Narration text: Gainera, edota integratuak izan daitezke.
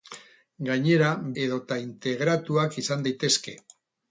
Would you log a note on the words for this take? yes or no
no